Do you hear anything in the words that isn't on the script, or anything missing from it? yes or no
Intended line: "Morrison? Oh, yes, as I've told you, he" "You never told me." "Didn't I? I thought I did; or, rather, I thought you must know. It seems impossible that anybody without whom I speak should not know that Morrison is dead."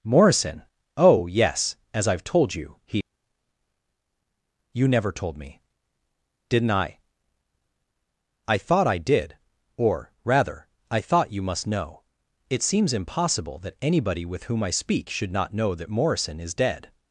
yes